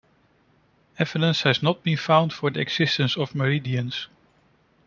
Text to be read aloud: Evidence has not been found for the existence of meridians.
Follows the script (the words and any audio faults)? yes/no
yes